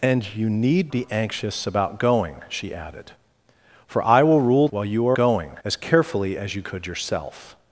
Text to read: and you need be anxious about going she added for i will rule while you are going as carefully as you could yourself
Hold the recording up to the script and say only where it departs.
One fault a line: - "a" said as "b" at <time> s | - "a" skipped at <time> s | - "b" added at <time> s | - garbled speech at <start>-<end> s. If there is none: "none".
none